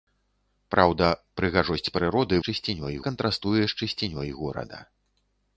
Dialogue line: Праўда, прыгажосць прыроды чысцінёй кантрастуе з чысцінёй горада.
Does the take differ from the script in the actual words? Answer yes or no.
no